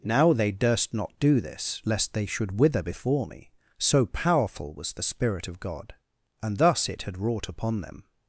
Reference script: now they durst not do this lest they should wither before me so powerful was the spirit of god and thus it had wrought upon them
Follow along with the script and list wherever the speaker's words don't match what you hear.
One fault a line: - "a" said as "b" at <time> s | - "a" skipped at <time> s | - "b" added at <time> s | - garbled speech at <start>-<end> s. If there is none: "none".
none